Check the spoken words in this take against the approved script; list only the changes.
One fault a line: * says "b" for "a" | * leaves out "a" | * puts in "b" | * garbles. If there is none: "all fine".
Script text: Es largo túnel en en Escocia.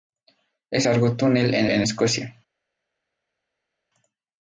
all fine